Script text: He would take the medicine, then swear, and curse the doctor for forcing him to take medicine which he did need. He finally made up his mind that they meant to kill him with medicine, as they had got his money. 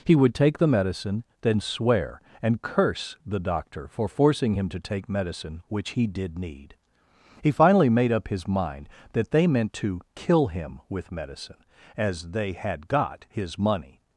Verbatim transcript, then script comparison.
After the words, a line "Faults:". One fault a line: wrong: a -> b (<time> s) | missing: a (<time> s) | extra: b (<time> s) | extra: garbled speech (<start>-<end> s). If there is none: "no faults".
He would take the medicine, then swear, and curse the doctor for forcing him to take medicine which he did need. He finally made up his mind that they meant to kill him with medicine, as they had got his money.
Faults:
no faults